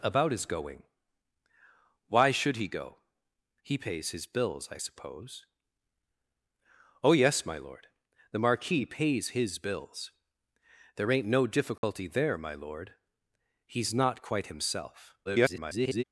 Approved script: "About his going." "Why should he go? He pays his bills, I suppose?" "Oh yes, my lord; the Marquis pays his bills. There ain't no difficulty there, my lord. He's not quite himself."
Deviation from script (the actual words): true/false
true